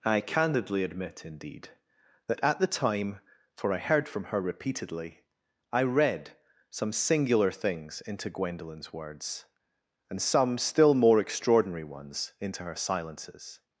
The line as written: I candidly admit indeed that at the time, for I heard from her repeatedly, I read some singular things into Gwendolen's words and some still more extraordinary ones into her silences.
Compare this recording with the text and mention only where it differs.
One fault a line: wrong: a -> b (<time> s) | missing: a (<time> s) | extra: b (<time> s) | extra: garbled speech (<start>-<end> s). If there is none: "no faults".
no faults